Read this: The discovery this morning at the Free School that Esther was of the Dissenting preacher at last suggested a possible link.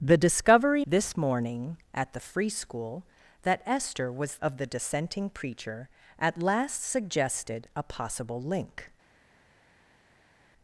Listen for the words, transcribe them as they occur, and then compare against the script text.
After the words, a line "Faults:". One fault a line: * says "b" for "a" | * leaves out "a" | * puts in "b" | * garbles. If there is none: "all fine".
The discovery this morning at the Free School that Esther was of the Dissenting preacher at last suggested a possible link.
Faults:
all fine